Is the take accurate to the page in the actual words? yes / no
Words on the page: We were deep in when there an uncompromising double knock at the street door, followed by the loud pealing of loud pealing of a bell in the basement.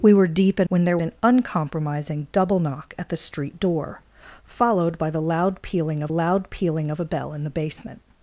yes